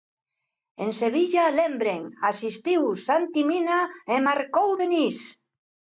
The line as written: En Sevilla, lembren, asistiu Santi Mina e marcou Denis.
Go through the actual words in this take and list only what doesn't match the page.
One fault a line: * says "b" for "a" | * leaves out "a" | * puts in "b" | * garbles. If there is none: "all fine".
all fine